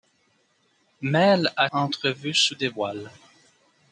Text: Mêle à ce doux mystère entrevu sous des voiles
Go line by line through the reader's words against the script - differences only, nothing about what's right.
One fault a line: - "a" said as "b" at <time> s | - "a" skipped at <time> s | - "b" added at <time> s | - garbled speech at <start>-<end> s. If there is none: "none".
- "ce doux mystère" skipped at 1.7 s